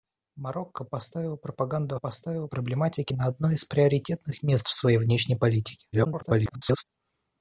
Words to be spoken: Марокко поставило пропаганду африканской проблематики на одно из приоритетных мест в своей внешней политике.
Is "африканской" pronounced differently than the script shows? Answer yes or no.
yes